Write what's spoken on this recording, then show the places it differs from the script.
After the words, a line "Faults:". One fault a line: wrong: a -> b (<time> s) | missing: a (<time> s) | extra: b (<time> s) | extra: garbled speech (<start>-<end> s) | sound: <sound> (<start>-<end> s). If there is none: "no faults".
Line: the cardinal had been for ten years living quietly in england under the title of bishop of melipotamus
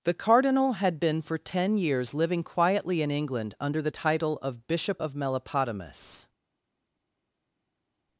the cardinal had been for ten years living quietly in england under the title of bishop of melipotamus
Faults:
no faults